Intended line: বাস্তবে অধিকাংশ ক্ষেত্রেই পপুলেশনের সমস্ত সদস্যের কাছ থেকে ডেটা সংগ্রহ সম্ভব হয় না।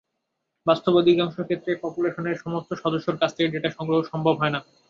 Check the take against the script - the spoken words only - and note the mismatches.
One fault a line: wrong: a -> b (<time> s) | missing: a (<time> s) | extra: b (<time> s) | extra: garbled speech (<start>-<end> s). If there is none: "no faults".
no faults